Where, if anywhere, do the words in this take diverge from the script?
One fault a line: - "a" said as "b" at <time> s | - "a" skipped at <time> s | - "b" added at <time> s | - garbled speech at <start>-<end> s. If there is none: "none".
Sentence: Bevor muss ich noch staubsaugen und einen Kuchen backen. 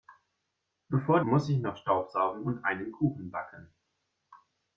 none